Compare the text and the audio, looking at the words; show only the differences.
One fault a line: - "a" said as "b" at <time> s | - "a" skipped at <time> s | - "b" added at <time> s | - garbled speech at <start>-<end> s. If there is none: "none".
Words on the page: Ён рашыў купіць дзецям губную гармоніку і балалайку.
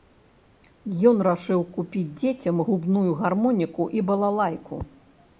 none